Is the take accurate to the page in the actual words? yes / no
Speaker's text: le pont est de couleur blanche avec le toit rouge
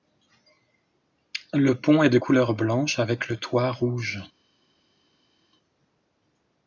yes